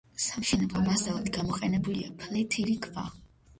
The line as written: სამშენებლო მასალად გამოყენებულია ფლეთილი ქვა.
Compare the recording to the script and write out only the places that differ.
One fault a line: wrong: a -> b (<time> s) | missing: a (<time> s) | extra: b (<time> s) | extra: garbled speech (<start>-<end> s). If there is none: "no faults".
no faults